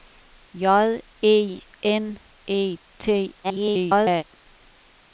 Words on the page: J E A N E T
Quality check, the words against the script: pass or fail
fail